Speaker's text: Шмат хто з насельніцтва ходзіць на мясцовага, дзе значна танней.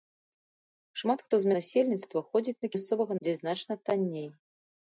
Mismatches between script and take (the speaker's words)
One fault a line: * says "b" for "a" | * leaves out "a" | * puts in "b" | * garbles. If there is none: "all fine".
all fine